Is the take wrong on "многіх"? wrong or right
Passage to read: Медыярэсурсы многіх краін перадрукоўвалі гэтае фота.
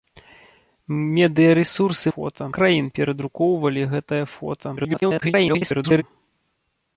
wrong